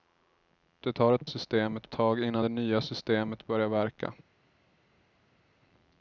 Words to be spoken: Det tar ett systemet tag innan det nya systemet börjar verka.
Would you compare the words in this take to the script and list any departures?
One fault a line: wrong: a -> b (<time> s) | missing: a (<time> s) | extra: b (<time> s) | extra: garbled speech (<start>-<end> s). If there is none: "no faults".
no faults